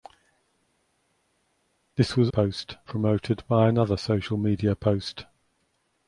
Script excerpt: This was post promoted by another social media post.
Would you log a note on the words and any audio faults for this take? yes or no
no